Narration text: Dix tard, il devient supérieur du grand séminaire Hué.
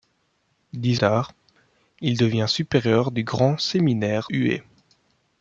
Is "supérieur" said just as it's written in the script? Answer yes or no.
yes